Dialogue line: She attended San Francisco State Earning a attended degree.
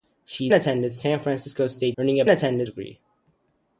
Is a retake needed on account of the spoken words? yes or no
no